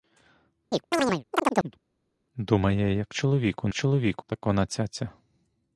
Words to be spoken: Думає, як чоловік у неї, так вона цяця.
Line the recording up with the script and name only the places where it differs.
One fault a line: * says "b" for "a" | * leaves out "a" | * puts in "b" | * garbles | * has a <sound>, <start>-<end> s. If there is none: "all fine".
* has a chirp, 0.7-1.8 s
* says "чоловік" for "неї"